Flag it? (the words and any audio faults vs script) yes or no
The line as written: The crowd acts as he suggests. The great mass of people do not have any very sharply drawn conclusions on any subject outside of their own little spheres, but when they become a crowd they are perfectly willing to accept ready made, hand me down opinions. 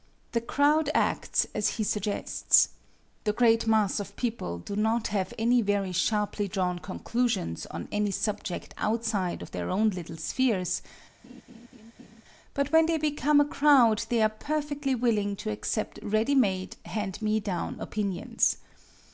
yes